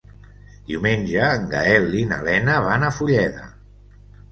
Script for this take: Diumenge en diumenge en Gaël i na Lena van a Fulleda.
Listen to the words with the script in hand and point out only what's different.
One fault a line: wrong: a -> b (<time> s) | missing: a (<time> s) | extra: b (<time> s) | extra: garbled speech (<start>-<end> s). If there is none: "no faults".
missing: diumenge en (1.5 s)